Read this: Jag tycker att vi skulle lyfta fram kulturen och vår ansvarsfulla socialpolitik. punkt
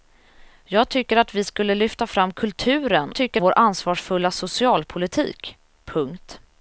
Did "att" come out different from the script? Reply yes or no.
no